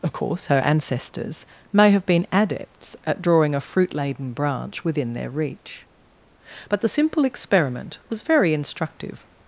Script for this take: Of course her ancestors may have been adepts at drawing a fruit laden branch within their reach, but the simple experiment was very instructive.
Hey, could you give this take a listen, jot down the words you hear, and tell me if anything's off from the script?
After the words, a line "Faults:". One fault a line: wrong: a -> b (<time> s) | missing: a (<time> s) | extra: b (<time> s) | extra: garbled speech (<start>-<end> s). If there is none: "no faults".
Of course her ancestors may have been adepts at drawing a fruit laden branch within their reach, but the simple experiment was very instructive.
Faults:
no faults